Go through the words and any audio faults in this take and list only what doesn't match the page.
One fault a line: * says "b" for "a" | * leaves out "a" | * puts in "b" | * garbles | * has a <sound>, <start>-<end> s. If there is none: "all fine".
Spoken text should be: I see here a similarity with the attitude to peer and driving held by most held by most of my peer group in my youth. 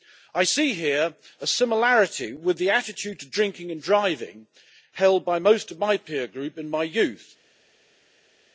* says "drinking" for "peer"
* leaves out "held by most"